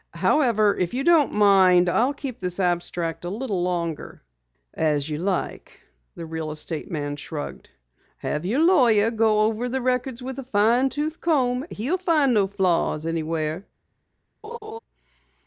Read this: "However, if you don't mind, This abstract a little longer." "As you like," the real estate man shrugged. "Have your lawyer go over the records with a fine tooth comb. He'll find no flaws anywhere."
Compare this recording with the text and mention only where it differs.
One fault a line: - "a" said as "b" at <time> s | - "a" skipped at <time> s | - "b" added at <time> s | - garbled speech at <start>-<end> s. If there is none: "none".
- "I'll keep" added at 1.9 s